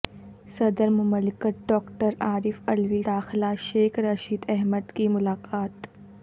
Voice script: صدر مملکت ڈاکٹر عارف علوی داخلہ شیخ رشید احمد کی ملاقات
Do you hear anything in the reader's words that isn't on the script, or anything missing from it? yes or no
no